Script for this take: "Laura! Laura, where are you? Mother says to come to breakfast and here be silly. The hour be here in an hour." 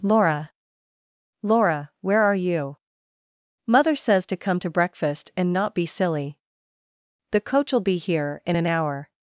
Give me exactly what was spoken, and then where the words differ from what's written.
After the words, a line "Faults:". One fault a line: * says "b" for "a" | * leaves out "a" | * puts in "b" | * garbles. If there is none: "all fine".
"Laura! Laura, where are you? Mother says to come to breakfast and not be silly. The coach'll be here in an hour."
Faults:
* says "not" for "here"
* says "coach'll" for "hour"